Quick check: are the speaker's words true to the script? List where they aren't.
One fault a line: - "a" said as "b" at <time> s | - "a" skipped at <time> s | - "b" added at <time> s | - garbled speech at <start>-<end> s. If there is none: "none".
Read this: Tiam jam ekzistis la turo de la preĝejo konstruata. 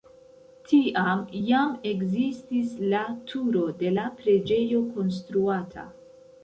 none